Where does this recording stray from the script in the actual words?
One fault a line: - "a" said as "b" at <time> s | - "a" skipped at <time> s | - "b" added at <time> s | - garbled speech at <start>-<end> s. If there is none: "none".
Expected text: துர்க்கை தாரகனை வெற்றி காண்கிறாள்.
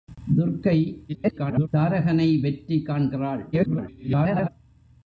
- garbled speech at 1.1-1.7 s
- garbled speech at 3.5-4.5 s